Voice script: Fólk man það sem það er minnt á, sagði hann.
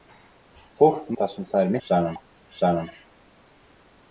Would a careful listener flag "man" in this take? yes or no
yes